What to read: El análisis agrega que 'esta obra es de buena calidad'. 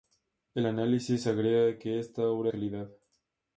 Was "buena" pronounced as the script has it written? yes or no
no